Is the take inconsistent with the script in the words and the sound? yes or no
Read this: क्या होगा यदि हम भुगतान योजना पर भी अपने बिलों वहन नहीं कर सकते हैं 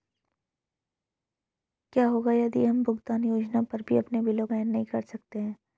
no